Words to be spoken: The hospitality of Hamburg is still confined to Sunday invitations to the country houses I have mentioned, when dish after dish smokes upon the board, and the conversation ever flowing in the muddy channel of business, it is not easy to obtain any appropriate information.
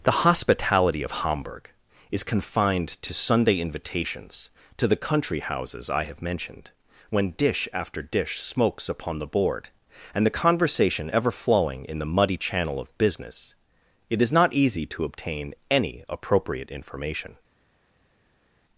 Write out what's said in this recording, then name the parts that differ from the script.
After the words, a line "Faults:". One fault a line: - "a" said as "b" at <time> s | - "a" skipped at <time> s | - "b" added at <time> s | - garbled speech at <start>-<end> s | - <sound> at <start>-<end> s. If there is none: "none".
The hospitality of Hamburg is confined to Sunday invitations to the country houses I have mentioned, when dish after dish smokes upon the board, and the conversation ever flowing in the muddy channel of business, it is not easy to obtain any appropriate information.
Faults:
- "still" skipped at 2.2 s